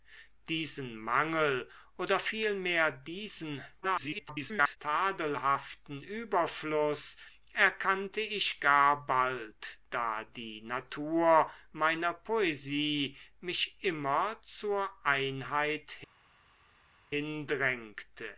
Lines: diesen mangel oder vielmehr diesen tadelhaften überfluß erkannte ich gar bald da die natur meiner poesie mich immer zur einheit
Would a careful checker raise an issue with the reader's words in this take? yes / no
yes